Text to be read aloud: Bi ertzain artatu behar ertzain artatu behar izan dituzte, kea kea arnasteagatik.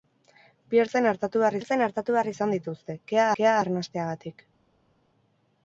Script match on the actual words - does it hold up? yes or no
yes